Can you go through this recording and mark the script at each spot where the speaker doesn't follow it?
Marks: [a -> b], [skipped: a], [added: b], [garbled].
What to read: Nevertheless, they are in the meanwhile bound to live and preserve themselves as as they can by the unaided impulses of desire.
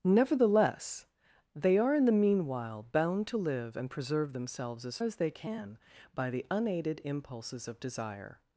Nevertheless, they are in the meanwhile bound to live and preserve themselves as as they can by the unaided impulses of desire.